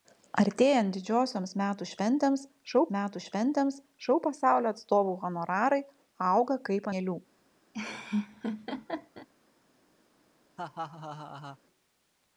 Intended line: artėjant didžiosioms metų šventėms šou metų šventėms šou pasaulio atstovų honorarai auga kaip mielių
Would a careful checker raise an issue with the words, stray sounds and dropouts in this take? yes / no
yes